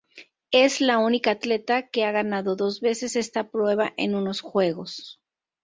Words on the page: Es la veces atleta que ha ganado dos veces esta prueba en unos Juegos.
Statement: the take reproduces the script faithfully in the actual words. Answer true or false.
false